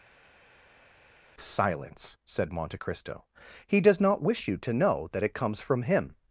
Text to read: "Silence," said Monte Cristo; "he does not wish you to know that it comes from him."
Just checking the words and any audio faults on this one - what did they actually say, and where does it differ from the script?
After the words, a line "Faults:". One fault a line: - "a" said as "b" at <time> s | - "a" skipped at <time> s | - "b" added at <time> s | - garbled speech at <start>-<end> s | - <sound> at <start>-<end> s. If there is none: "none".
"Silence," said Monte Cristo; "he does not wish you to know that it comes from him."
Faults:
none